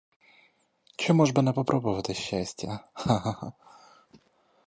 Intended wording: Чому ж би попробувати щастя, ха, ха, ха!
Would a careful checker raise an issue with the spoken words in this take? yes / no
yes